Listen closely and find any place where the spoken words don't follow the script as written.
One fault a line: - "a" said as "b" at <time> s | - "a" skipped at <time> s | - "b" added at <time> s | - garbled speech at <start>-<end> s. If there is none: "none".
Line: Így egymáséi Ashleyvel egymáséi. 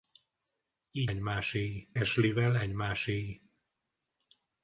none